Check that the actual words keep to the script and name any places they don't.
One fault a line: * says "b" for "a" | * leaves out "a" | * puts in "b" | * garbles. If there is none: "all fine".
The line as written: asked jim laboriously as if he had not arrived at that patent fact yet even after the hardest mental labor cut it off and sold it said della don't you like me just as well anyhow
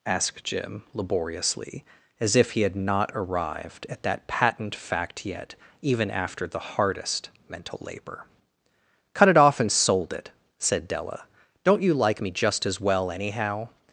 all fine